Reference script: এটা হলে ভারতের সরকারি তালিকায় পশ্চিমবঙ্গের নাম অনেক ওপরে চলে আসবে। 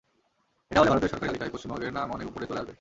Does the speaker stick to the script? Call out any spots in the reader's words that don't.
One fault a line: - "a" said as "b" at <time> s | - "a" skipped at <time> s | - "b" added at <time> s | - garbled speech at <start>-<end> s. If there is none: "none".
none